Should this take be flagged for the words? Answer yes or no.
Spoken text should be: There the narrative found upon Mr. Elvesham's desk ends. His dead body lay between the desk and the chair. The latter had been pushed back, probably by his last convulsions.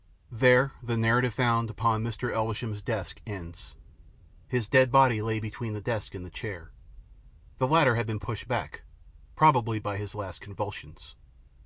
no